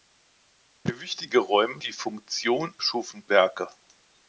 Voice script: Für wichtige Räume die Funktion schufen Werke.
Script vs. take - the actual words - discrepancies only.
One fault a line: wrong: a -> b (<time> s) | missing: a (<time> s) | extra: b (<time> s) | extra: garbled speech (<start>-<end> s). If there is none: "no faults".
no faults